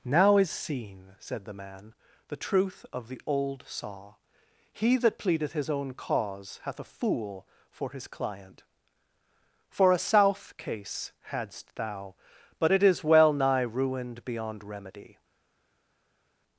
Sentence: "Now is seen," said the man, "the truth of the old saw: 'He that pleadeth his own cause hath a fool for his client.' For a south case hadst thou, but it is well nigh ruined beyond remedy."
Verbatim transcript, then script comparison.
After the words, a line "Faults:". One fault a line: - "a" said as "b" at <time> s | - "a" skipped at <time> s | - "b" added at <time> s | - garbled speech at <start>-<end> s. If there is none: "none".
"Now is seen," said the man, "the truth of the old saw: 'He that pleadeth his own cause hath a fool for his client.' For a south case hadst thou, but it is well nigh ruined beyond remedy."
Faults:
none